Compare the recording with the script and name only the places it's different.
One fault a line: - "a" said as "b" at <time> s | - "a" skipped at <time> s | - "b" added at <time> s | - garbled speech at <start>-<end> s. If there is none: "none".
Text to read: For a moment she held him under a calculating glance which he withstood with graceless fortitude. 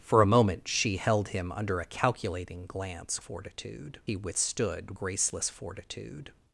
- "which" said as "fortitude" at 3.2 s
- "with" skipped at 5.0 s